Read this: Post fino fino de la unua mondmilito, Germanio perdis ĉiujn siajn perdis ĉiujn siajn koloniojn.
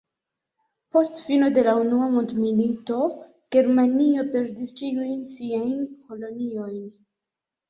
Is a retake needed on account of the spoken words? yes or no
yes